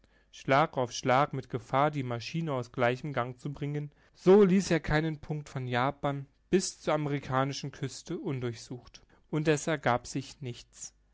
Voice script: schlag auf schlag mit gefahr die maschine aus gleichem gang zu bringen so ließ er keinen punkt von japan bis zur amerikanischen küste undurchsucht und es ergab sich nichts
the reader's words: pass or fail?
pass